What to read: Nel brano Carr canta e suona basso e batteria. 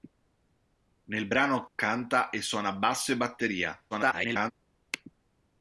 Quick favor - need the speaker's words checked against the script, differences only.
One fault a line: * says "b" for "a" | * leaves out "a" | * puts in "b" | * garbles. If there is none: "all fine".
* leaves out "Carr"
* garbles